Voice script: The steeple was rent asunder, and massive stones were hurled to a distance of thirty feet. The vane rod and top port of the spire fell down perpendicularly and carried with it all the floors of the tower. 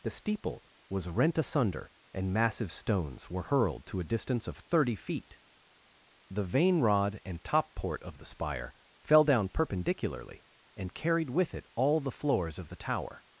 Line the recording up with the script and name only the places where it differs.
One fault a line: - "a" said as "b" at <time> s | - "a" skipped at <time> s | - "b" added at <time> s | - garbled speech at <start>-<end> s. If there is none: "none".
none